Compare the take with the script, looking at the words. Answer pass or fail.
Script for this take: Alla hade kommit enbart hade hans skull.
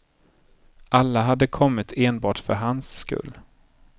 fail